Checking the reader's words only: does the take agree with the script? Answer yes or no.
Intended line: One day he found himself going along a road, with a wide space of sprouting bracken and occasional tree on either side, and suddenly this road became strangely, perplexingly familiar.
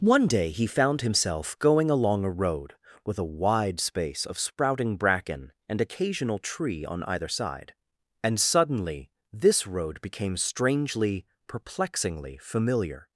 yes